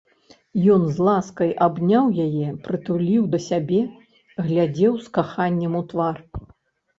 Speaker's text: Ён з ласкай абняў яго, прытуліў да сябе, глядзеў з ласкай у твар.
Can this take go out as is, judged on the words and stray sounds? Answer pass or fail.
fail